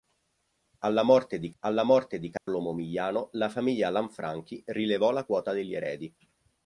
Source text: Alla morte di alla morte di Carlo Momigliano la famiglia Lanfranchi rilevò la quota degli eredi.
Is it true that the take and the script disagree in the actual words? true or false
false